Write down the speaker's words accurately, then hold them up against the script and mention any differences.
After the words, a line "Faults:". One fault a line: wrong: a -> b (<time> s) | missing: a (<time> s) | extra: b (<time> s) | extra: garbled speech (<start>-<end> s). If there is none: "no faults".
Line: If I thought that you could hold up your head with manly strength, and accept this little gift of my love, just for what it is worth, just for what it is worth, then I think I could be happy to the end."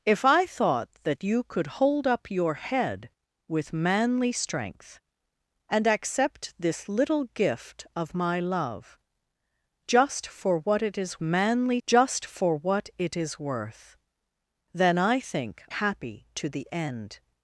If I thought that you could hold up your head with manly strength, and accept this little gift of my love, just for what it is manly, just for what it is worth, then I think happy to the end."
Faults:
wrong: worth -> manly (11.2 s)
missing: I could be (15.6 s)